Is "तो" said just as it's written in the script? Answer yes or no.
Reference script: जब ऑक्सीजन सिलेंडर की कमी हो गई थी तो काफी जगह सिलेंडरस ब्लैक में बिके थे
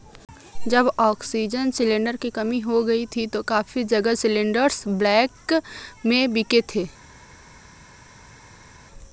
yes